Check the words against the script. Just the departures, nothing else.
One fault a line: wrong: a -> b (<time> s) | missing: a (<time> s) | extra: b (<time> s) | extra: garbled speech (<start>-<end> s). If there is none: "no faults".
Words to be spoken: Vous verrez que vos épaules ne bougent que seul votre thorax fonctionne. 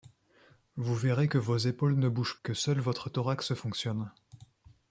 no faults